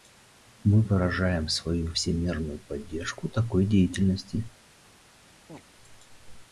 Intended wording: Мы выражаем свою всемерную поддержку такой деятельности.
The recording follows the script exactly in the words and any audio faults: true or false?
false